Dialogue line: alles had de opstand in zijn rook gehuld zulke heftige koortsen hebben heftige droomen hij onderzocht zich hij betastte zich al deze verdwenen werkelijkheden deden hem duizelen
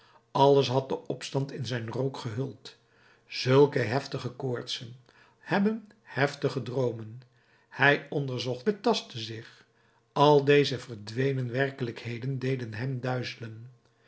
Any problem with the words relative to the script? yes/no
yes